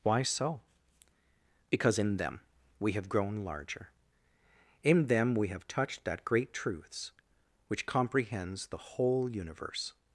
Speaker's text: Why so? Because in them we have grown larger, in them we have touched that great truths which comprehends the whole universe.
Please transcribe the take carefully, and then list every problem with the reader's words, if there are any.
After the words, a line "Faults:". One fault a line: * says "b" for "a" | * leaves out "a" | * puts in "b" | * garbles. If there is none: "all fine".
Why so? Because in them we have grown larger, in them we have touched that great truths which comprehends the whole universe.
Faults:
all fine